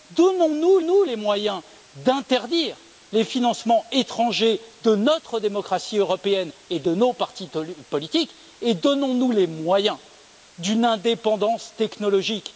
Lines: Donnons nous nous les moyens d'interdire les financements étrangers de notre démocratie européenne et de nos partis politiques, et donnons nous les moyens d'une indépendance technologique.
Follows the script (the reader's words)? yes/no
yes